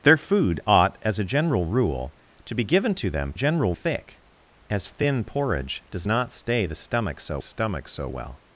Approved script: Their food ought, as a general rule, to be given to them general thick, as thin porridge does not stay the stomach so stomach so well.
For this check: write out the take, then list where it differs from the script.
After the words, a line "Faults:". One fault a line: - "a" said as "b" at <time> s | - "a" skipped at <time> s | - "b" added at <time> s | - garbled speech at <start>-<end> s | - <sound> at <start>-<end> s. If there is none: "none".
Their food ought, as a general rule, to be given to them general thick, as thin porridge does not stay the stomach so stomach so well.
Faults:
none